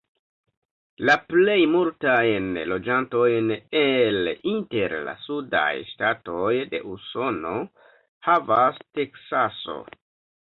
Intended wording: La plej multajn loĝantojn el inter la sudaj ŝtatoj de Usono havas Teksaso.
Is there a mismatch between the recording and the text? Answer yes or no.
no